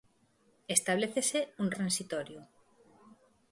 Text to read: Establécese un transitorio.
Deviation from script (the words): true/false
false